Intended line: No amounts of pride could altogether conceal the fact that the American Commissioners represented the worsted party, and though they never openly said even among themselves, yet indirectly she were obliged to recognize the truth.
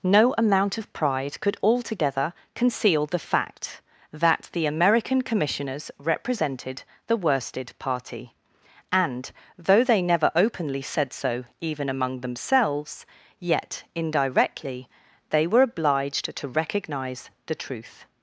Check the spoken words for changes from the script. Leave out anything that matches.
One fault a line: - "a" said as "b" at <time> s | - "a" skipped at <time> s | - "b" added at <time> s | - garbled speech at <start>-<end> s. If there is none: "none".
- "amounts" said as "amount" at 0.3 s
- "so" added at 11.1 s
- "she" said as "they" at 15.3 s